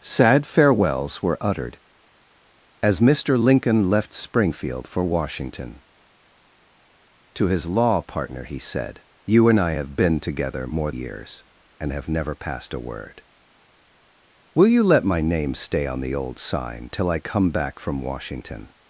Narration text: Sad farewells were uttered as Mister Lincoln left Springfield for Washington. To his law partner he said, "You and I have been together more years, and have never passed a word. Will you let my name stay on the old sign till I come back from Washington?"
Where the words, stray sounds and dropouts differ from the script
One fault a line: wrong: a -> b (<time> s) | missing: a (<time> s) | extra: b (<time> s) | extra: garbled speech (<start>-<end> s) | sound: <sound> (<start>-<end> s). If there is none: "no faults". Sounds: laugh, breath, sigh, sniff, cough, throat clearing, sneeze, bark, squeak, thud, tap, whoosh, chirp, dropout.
no faults